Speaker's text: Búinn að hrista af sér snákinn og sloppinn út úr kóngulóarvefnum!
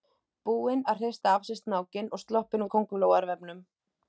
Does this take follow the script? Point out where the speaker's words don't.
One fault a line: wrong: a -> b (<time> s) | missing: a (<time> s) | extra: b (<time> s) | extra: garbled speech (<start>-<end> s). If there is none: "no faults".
missing: út (2.6 s)